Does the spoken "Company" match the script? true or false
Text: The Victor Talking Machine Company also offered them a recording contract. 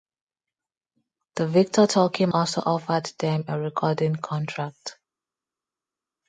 false